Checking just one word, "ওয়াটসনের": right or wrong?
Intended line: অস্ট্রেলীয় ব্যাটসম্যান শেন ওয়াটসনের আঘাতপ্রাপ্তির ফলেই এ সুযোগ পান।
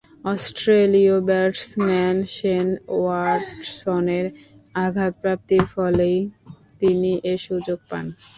right